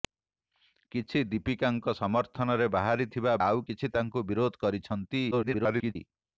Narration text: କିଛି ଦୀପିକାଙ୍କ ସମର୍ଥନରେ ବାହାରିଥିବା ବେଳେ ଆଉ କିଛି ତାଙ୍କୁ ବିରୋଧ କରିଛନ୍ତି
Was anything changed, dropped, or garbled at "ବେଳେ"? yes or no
yes